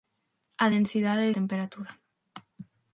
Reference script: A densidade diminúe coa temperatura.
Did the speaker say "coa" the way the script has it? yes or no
no